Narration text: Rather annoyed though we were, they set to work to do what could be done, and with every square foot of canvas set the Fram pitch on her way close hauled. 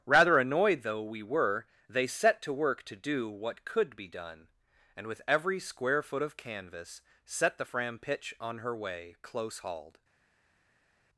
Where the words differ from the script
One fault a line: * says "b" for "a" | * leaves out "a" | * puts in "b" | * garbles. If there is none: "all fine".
all fine